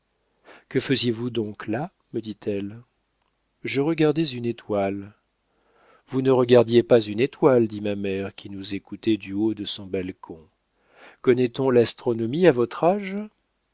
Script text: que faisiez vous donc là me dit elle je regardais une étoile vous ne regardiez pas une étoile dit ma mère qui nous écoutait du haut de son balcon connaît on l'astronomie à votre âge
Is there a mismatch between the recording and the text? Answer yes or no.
no